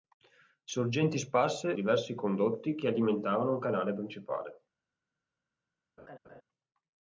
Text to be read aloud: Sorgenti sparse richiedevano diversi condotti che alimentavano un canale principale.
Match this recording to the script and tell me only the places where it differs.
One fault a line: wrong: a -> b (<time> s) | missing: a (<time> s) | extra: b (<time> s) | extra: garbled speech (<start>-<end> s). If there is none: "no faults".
missing: richiedevano (1.7 s)